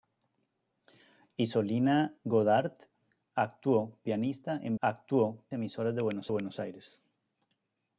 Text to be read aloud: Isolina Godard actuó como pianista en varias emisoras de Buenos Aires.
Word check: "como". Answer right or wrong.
wrong